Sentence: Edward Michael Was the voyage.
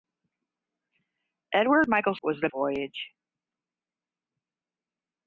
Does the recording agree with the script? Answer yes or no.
yes